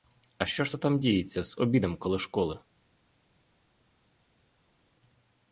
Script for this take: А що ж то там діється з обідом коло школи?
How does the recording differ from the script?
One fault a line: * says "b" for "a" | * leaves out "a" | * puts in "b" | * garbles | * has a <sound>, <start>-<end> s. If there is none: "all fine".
all fine